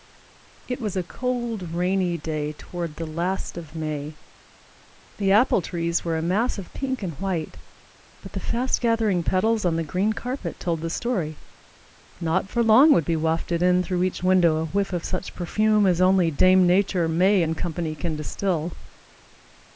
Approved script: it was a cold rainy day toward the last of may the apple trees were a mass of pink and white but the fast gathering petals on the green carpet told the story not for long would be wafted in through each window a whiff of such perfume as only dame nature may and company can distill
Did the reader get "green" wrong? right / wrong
right